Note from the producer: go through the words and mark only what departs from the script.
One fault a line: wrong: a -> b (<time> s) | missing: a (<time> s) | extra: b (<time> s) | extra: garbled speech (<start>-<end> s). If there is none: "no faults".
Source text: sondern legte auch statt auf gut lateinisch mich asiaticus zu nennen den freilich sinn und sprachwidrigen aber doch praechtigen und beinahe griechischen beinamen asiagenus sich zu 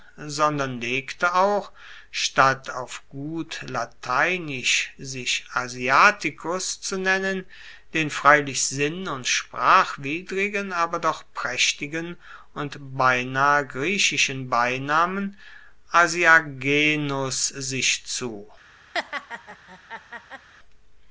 wrong: mich -> sich (5.0 s)